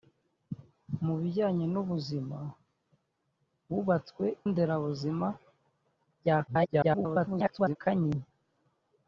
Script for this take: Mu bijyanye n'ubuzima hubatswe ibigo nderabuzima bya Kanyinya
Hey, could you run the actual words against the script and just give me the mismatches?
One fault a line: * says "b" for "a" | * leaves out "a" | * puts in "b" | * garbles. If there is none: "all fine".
* leaves out "ibigo"
* garbles